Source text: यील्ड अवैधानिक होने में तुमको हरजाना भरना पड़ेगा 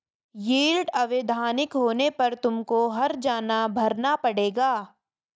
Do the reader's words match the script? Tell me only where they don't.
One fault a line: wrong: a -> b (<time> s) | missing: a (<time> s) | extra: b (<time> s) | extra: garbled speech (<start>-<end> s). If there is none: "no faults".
wrong: में -> पर (2.1 s)